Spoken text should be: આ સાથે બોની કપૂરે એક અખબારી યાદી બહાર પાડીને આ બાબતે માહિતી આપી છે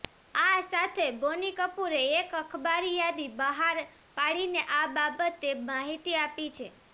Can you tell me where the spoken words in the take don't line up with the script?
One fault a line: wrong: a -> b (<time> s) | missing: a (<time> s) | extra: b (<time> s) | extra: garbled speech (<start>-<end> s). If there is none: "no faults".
no faults